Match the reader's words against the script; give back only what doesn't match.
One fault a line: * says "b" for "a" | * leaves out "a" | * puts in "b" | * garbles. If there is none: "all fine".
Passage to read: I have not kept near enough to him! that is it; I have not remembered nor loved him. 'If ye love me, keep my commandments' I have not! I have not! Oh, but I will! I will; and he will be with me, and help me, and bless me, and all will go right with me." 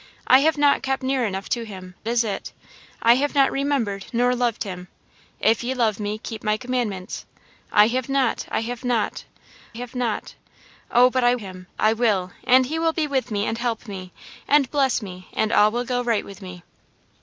* leaves out "that"
* puts in "have not"
* says "him" for "will"